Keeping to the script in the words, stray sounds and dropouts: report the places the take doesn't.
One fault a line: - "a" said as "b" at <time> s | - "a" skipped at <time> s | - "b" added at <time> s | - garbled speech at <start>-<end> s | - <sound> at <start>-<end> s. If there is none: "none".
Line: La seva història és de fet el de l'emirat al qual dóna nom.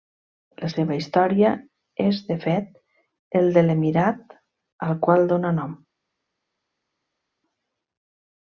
none